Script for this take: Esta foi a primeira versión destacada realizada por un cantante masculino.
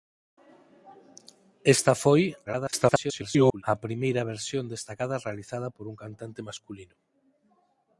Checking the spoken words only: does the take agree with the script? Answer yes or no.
no